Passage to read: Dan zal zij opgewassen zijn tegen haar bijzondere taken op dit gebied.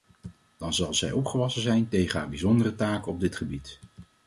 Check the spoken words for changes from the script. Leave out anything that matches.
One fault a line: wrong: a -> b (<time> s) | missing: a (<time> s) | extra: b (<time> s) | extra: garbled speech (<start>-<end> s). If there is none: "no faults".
no faults